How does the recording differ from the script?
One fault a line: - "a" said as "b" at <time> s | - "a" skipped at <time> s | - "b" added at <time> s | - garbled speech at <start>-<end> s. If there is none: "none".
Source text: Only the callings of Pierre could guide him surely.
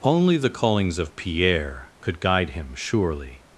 none